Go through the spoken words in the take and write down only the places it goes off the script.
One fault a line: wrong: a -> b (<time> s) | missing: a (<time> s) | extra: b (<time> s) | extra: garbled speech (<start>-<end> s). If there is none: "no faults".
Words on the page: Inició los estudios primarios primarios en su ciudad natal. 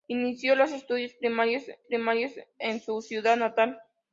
no faults